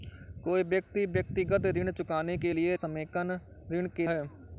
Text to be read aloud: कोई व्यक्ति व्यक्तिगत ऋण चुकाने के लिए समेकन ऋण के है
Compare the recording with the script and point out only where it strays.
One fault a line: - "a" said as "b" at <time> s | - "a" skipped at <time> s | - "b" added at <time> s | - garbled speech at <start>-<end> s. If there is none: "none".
none